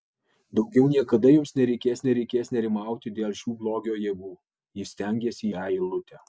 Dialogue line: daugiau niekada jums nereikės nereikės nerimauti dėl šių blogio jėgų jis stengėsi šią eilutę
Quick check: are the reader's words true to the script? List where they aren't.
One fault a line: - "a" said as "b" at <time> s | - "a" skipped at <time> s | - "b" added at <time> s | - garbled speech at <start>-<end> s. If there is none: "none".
none